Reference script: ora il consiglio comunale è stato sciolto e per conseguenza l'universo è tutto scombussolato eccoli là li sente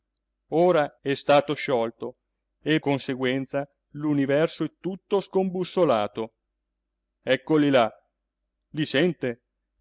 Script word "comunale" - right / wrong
wrong